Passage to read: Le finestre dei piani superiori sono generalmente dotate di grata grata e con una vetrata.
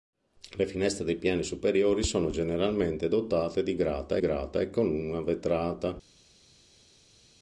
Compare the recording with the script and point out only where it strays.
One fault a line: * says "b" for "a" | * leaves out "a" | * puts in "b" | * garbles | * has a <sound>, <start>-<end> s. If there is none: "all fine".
all fine